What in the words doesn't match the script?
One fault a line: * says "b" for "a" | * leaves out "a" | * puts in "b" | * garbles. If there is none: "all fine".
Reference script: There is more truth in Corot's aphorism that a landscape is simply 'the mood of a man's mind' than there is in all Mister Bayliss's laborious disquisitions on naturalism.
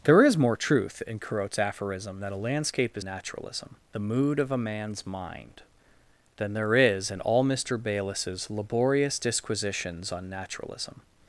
* says "naturalism" for "simply"